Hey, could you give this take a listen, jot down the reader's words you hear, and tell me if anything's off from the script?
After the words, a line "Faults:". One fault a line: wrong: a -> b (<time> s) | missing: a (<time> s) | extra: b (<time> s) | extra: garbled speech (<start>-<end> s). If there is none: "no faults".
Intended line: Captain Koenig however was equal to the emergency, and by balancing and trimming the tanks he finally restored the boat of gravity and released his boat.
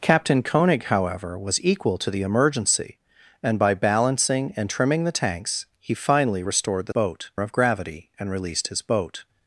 Captain Koenig however was equal to the emergency, and by balancing and trimming the tanks he finally restored the boat of gravity and released his boat.
Faults:
no faults